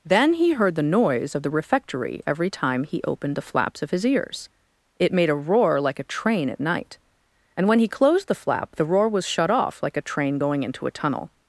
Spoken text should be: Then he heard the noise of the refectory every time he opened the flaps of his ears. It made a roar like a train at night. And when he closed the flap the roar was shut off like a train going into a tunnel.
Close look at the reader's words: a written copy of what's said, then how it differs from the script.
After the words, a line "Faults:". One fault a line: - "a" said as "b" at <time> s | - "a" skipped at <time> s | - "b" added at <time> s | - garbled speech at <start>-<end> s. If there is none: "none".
Then he heard the noise of the refectory every time he opened the flaps of his ears. It made a roar like a train at night. And when he closed the flap the roar was shut off like a train going into a tunnel.
Faults:
none